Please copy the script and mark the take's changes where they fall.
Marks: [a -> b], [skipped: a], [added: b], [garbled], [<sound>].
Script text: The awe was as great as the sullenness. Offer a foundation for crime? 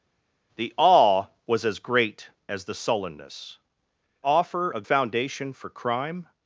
The awe was as great as the sullenness. Offer a foundation for crime?